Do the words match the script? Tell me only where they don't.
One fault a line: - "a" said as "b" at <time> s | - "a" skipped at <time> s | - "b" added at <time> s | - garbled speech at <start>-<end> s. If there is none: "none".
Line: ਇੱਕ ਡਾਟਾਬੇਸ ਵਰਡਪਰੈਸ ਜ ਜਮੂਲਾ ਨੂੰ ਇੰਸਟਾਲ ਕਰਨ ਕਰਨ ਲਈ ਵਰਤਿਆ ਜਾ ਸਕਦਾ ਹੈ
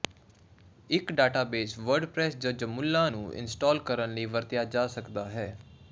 - "ਕਰਨ" skipped at 4.1 s